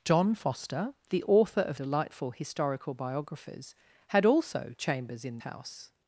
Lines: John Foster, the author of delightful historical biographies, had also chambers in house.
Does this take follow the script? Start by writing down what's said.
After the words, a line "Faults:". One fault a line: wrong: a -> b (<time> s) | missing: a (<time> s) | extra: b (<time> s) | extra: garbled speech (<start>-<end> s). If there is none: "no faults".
John Foster, the author of delightful historical biographies, had also chambers in house.
Faults:
no faults